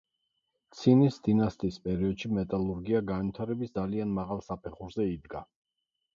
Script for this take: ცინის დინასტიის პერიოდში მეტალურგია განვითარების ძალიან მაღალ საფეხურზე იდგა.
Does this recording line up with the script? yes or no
yes